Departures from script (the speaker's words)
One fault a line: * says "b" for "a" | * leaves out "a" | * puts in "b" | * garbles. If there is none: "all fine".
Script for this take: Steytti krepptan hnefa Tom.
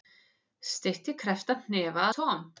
all fine